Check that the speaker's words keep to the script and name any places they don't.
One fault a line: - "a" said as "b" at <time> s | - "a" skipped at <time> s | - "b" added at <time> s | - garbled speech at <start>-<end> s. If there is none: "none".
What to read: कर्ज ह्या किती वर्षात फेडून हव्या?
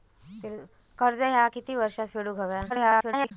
- garbled speech at 2.7-3.3 s